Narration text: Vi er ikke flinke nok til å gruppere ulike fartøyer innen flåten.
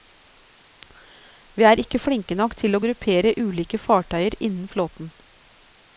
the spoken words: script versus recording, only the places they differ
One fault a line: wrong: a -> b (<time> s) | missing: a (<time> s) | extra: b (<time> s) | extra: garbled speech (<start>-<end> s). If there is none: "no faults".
no faults